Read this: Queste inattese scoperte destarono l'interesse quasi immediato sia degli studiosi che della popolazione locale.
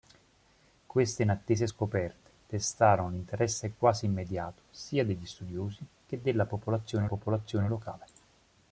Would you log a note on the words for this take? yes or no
yes